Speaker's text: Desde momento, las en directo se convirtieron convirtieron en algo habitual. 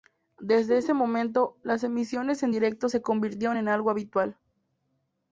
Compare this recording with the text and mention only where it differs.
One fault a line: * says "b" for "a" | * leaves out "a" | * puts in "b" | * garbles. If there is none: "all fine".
* puts in "ese"
* puts in "emisiones"
* leaves out "convirtieron"